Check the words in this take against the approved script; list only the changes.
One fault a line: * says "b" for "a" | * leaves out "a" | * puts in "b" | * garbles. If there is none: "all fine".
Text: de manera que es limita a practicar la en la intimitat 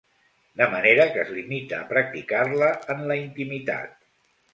all fine